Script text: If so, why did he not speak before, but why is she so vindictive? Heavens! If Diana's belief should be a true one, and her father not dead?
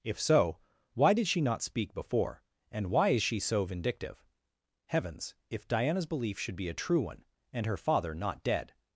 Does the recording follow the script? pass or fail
fail